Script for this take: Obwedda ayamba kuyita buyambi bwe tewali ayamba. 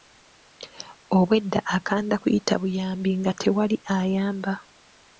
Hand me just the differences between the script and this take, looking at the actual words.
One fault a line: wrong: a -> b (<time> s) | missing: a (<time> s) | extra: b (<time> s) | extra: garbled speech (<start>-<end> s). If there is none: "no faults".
wrong: ayamba -> akanda (1.8 s)
wrong: bwe -> nga (3.2 s)